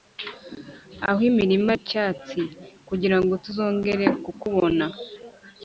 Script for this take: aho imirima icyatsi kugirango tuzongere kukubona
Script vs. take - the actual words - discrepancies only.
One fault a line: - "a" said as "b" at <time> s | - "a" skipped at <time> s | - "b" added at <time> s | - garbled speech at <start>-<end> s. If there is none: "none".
none